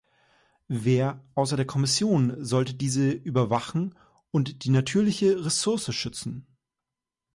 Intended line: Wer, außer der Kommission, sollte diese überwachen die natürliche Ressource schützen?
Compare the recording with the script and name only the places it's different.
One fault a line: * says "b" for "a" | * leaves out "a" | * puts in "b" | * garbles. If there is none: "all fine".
* puts in "und"